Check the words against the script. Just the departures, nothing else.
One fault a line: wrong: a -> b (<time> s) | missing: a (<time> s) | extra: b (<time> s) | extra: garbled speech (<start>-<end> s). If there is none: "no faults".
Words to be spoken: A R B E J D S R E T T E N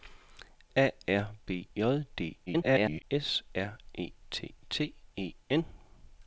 missing: E (1.7 s)
extra: garbled speech (2.5-3.0 s)